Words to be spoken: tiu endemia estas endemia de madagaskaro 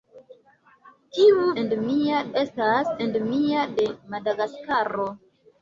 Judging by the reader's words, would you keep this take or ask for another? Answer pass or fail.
pass